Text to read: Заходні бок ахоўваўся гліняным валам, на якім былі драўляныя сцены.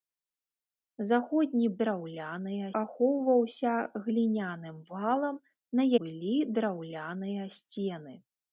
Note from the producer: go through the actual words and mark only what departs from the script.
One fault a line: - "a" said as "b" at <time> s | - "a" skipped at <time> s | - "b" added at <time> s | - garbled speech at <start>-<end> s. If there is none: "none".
- "бок" said as "драўляныя" at 1.8 s
- "якім" skipped at 5.9 s